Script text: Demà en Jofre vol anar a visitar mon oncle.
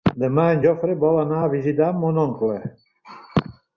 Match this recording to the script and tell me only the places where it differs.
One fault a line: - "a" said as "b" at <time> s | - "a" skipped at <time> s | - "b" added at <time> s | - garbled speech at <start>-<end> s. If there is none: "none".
none